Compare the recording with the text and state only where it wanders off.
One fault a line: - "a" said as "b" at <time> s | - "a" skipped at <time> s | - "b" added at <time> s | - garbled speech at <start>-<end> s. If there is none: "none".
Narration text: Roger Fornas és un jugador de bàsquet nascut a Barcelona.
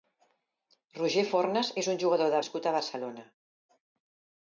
- "bàsquet" skipped at 2.4 s